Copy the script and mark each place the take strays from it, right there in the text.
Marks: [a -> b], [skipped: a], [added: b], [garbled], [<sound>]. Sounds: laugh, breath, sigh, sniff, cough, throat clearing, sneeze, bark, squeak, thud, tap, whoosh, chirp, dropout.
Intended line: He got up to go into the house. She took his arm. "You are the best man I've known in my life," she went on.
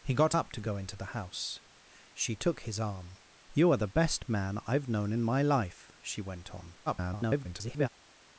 He got up to go into the house. She took his arm. "You are the best man I've known in my life," she went on. [garbled]